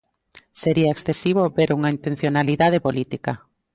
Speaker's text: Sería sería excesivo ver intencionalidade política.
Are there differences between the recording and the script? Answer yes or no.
yes